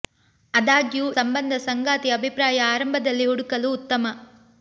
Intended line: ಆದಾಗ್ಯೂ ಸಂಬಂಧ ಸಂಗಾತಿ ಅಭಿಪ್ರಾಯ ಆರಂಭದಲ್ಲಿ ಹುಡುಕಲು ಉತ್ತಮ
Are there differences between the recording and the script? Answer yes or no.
no